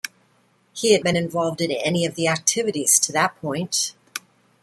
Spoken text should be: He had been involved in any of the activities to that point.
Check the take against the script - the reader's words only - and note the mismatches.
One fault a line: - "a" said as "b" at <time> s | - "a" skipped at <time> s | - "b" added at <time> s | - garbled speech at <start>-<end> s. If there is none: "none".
none